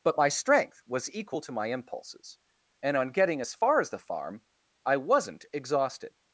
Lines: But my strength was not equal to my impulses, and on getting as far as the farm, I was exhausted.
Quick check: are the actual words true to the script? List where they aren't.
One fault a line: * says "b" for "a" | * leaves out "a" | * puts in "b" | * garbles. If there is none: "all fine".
* leaves out "not"
* says "wasn't" for "was"